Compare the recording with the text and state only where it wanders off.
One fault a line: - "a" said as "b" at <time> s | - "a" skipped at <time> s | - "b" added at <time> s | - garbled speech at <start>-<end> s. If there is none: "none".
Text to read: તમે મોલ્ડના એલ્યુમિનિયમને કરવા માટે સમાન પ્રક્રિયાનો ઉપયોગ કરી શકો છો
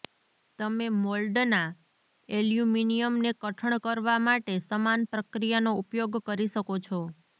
- "કઠણ" added at 3.4 s